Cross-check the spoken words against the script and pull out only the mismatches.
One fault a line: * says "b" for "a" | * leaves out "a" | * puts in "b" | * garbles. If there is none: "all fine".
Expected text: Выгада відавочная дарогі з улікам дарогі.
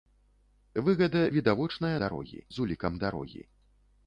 all fine